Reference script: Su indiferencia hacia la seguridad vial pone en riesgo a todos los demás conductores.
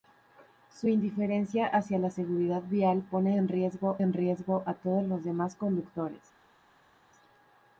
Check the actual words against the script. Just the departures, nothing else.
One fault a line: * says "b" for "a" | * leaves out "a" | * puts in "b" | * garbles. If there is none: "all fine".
* puts in "en riesgo"